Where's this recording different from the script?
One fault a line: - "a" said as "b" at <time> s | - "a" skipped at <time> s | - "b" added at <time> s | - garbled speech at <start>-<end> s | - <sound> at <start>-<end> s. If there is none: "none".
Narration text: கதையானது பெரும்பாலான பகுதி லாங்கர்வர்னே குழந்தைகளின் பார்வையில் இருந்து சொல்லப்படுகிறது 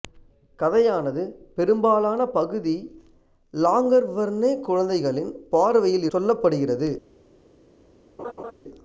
- "இருந்து" skipped at 6.1 s
- laugh at 8.2-8.5 s